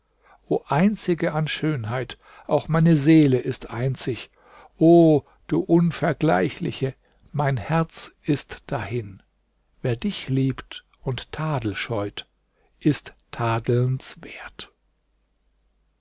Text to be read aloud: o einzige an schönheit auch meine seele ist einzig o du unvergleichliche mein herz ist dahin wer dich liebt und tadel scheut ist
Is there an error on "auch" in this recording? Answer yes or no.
no